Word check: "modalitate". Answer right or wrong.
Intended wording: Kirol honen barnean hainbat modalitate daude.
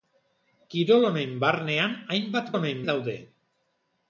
wrong